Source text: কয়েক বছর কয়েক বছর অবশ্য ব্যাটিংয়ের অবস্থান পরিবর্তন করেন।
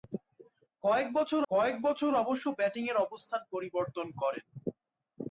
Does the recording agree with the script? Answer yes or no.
yes